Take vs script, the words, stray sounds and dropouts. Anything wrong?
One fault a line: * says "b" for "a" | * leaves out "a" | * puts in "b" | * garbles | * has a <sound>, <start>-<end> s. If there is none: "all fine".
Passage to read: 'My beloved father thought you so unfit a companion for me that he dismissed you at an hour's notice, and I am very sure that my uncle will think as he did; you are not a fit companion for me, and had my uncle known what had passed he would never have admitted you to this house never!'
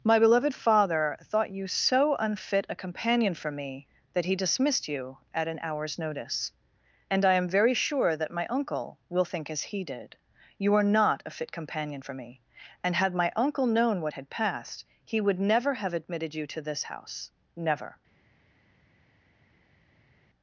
all fine